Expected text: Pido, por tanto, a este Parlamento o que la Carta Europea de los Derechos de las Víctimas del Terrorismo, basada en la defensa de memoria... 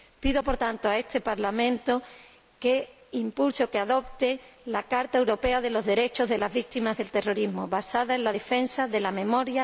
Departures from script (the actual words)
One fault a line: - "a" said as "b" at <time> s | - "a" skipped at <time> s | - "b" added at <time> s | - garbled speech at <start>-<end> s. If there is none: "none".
- "que impulse" added at 2.6 s
- "adopte" added at 3.8 s
- "la" added at 9.0 s